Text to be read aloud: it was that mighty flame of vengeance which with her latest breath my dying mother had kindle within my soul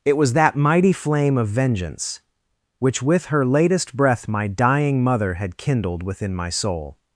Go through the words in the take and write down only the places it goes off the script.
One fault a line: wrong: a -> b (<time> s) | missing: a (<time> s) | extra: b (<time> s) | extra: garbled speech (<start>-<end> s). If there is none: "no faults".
wrong: kindle -> kindled (5.5 s)